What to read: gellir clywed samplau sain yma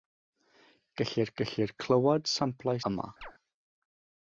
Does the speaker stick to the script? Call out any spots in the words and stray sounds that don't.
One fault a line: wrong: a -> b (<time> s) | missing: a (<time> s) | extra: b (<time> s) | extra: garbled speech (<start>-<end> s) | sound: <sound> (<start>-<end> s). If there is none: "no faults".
extra: gellir (1.4 s)
missing: sain (2.8 s)
sound: chirp (3.2-3.3 s)